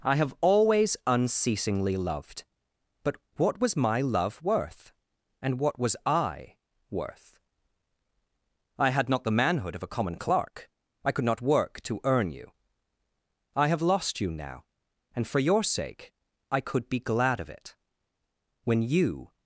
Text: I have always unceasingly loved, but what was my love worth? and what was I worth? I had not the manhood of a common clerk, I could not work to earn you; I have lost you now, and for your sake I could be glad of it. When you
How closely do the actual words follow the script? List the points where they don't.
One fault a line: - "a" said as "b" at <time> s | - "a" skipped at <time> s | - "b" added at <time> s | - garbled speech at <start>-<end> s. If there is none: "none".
none